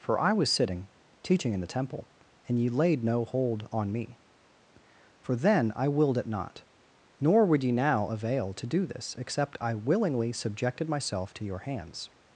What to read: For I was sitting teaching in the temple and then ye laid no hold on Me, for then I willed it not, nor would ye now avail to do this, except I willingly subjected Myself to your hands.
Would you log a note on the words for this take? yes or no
yes